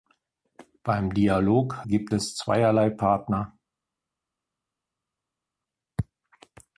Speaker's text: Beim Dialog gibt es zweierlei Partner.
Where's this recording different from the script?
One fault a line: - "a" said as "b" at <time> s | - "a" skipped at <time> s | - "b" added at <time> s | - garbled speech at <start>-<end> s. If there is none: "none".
none